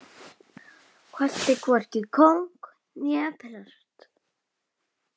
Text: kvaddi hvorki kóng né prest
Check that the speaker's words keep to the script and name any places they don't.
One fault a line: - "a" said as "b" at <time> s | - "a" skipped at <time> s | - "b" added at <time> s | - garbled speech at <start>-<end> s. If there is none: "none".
none